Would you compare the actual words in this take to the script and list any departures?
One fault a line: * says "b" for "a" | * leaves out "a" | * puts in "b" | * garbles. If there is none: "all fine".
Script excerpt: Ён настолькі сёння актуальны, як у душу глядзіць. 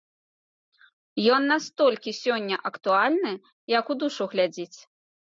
all fine